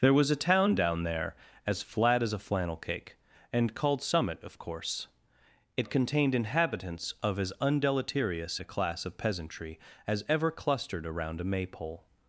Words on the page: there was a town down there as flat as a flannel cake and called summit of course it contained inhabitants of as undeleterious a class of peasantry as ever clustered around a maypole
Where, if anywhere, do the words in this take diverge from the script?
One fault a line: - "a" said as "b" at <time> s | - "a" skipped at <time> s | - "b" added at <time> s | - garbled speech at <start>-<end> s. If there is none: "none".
none